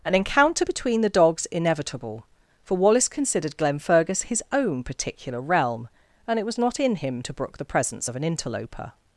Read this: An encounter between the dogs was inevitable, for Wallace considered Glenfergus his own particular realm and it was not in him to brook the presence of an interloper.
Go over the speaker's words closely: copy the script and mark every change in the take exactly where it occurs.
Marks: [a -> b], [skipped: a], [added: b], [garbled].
An encounter between the dogs [skipped: was] inevitable, for Wallace considered Glenfergus his own particular realm and it was not in him to brook the presence of an interloper.